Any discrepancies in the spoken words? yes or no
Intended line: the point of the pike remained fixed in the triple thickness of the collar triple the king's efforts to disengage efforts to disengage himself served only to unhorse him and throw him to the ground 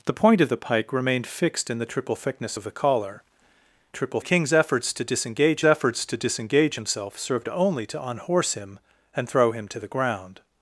no